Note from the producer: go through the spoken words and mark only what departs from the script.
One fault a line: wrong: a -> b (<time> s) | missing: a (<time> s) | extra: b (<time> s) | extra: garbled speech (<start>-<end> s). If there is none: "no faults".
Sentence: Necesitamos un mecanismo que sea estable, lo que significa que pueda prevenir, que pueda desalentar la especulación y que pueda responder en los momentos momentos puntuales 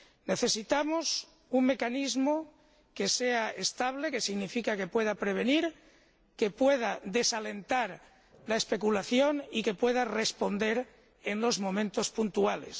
missing: momentos (12.1 s)